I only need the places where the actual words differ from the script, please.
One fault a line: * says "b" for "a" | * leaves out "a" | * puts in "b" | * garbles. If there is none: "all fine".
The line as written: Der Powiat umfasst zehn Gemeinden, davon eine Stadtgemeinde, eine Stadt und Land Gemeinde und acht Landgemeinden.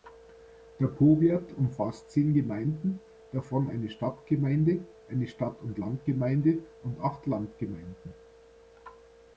all fine